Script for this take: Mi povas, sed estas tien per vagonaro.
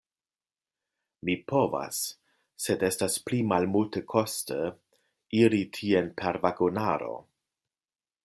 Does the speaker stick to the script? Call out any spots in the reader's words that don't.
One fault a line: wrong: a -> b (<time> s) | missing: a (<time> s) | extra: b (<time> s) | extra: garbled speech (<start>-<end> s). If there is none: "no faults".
extra: pli malmultekoste iri (3.3 s)